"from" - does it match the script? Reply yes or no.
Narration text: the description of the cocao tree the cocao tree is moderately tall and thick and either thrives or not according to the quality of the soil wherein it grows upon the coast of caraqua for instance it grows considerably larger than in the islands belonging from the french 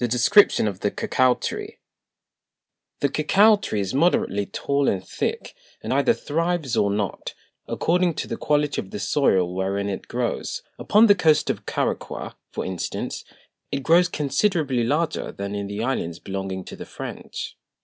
no